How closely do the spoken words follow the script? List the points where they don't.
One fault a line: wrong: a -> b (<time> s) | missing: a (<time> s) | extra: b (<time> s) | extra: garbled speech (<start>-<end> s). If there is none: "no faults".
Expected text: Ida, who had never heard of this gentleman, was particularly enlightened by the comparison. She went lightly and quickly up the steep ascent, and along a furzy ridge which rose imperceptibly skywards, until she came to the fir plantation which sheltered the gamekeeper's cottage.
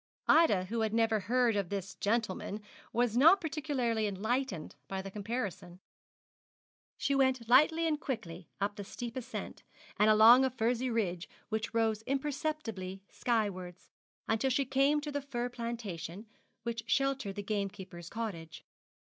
extra: not (3.1 s)